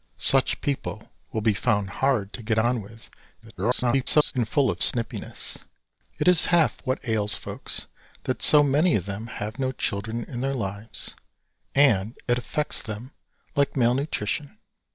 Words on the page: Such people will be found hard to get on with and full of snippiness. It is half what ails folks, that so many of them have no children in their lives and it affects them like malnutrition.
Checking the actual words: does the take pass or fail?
fail